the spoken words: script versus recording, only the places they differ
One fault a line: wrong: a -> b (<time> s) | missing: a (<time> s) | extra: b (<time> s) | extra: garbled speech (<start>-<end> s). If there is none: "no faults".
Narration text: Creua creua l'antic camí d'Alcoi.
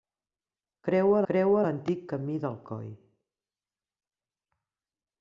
no faults